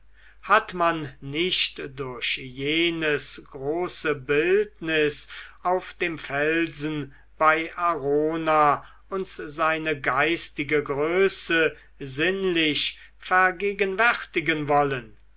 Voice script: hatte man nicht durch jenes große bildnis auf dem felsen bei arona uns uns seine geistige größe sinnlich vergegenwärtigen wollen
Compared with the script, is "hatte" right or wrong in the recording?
wrong